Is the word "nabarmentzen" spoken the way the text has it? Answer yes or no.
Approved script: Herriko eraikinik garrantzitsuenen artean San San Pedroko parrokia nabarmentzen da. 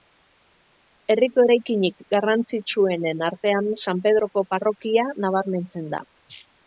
yes